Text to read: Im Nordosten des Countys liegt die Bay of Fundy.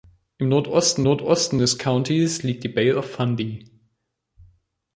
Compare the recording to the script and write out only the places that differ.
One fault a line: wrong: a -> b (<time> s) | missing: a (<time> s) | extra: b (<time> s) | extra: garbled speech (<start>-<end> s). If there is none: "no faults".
extra: Nordosten (1.0 s)